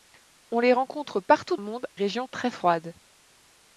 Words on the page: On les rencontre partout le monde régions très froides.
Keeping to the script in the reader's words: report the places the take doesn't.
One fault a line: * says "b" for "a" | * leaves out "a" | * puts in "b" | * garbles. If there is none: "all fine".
all fine